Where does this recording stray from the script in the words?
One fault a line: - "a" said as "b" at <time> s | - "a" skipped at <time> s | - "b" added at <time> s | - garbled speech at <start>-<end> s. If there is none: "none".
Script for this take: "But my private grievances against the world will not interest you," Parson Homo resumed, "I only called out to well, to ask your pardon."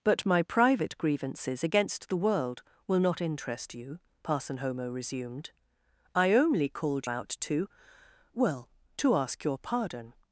none